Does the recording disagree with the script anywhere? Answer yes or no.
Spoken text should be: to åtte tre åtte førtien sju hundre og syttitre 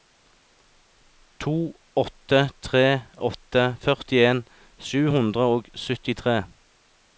no